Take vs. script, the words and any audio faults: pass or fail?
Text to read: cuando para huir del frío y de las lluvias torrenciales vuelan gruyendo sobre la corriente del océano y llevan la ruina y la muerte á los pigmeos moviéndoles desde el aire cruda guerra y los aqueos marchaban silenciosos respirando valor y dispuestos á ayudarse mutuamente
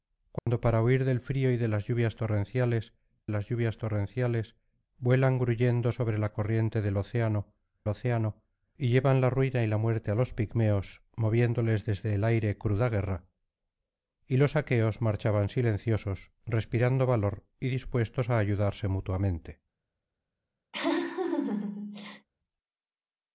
fail